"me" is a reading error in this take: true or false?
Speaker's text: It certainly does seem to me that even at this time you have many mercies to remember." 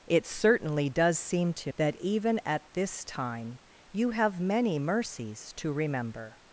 true